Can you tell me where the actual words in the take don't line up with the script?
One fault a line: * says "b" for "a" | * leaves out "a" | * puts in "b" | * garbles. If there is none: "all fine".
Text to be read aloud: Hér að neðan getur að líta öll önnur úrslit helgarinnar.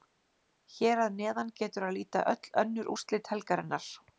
all fine